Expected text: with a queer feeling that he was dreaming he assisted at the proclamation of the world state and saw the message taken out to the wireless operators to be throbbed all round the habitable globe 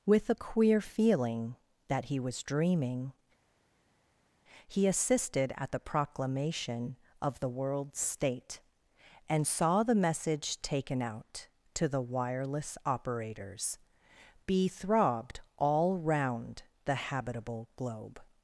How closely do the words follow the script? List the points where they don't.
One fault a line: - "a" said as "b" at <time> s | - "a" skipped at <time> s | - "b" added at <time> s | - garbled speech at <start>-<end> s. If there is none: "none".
- "to" skipped at 13.8 s